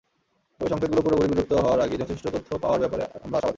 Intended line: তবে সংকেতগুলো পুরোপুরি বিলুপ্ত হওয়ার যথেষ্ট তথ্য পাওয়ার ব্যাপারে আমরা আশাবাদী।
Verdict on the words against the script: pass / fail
fail